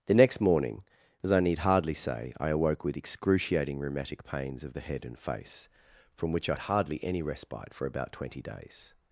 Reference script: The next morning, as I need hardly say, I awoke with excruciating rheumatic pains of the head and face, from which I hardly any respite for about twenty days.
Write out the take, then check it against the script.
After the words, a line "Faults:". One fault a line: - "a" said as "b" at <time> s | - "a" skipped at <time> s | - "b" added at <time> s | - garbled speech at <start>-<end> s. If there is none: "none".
The next morning, as I need hardly say, I awoke with excruciating rheumatic pains of the head and face, from which I hardly any respite for about twenty days.
Faults:
none